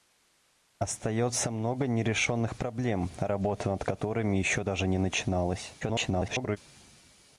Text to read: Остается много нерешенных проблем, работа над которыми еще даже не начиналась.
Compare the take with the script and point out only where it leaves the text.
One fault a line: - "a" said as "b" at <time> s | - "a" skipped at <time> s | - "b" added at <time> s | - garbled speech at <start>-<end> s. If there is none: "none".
- garbled speech at 5.8-6.6 s